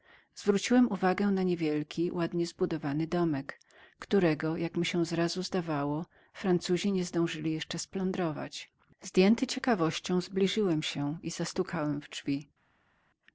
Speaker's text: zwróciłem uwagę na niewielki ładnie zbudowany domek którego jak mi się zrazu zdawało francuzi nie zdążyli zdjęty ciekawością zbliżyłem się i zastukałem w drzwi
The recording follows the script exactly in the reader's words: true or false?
false